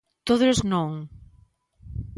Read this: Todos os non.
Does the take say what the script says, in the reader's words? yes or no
yes